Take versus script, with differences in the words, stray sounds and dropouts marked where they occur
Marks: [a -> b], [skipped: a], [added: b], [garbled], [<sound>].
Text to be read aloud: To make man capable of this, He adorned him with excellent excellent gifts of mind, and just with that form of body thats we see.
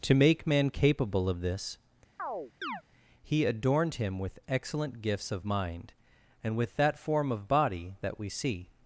To make man capable of this, [chirp] He adorned him with excellent [skipped: excellent] gifts of mind, and [skipped: just] with that form of body [thats -> that] we see.